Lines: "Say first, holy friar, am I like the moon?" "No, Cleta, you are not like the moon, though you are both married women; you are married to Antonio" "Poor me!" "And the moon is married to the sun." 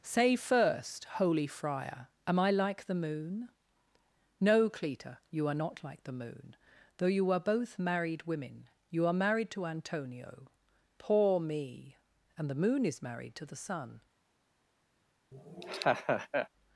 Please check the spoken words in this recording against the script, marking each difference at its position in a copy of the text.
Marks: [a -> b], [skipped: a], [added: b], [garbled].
"Say first, holy friar, am I like the moon?" "No, Cleta, you are not like the moon, though you are both married women; you are married to Antonio" "Poor me!" "And the moon is married to the sun."